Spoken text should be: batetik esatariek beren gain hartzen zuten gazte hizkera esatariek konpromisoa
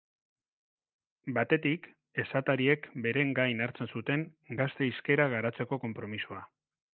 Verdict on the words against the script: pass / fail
fail